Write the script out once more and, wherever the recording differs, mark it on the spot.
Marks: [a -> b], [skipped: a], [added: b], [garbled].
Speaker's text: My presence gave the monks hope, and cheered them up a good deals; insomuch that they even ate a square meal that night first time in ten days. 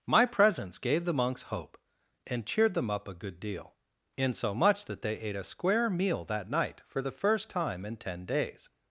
My presence gave the monks hope, and cheered them up a good [deals; -> deal] insomuch that they [skipped: even] ate a square meal that night [added: for the] first time in ten days.